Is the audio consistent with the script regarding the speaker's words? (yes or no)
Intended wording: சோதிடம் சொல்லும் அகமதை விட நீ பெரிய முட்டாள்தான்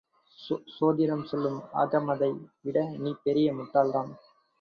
yes